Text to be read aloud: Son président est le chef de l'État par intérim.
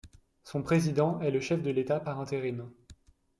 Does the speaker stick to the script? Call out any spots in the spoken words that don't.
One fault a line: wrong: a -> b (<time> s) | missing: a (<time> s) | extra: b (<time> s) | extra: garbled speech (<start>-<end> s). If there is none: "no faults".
no faults